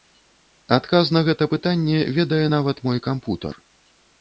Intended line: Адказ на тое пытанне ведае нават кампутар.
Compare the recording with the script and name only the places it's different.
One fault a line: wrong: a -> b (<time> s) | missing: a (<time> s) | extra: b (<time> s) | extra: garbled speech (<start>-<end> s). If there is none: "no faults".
wrong: тое -> гэта (1.3 s)
extra: мой (2.9 s)